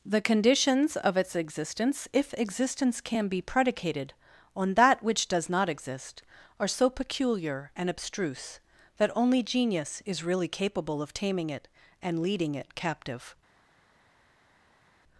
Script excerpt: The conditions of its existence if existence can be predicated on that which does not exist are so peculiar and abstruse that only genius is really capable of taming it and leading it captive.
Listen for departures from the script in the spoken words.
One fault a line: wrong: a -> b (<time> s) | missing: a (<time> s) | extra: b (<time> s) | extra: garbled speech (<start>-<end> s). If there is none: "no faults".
no faults